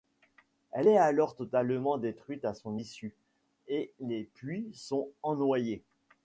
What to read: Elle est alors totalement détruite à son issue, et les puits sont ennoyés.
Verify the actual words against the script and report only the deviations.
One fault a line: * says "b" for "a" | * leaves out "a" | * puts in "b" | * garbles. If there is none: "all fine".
all fine